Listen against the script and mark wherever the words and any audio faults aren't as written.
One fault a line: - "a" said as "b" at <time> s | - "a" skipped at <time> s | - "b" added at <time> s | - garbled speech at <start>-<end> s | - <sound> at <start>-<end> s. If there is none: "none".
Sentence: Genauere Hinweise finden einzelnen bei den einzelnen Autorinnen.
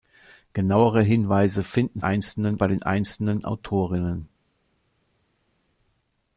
none